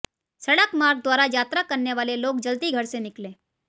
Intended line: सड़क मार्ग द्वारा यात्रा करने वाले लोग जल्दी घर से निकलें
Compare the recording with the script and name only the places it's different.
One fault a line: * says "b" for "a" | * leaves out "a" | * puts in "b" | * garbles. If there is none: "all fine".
all fine